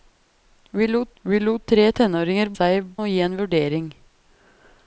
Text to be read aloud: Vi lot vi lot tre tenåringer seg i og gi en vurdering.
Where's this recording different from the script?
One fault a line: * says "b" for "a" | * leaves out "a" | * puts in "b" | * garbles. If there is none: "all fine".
all fine